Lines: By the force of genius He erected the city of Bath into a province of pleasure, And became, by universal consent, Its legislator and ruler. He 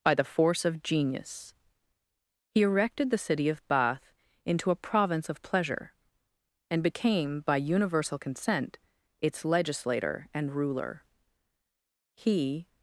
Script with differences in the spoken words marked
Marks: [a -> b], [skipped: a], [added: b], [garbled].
By the force of genius He erected the city of Bath into a province of pleasure, And became, by universal consent, Its legislator and ruler. He